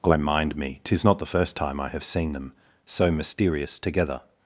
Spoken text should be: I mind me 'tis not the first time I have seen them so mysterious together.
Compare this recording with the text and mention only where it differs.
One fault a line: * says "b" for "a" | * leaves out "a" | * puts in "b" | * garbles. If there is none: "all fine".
all fine